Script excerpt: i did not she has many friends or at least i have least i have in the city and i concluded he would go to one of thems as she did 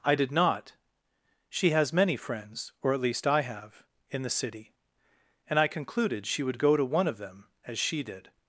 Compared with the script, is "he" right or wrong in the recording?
wrong